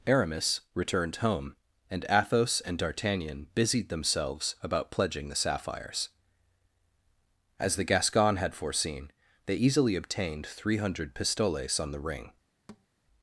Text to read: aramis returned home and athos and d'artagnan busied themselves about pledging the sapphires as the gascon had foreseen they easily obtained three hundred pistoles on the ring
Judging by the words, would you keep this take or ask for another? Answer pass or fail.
pass